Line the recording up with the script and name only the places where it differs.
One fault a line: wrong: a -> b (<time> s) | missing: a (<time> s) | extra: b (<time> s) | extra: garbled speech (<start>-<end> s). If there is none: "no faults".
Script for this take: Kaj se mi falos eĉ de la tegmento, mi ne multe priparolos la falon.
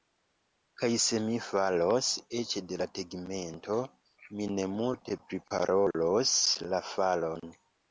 no faults